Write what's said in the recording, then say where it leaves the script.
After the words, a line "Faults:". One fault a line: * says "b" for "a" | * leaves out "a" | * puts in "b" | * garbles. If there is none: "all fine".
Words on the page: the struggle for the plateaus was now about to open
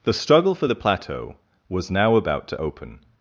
the struggle for the plateau was now about to open
Faults:
* says "plateau" for "plateaus"